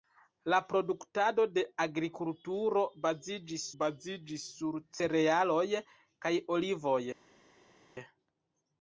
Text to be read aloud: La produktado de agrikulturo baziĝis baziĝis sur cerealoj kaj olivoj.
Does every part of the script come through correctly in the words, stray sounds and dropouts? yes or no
yes